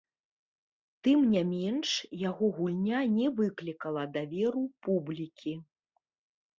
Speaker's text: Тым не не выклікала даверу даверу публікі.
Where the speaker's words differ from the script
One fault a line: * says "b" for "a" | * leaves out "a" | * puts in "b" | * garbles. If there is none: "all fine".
* puts in "менш яго гульня"
* leaves out "даверу"